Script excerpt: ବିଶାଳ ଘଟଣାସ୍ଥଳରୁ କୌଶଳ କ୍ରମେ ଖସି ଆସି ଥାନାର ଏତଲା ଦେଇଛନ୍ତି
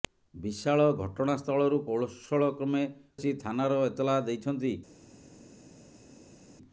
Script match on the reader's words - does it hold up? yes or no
no